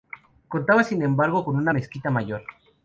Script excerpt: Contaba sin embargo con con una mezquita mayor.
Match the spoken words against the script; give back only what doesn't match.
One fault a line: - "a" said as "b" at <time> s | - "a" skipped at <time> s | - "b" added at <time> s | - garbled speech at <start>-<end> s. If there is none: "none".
- "con" skipped at 1.6 s